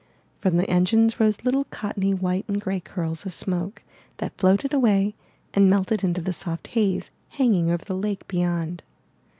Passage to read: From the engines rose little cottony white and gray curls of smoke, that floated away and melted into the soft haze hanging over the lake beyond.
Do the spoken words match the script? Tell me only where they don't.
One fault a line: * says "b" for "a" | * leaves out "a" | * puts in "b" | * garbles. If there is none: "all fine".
all fine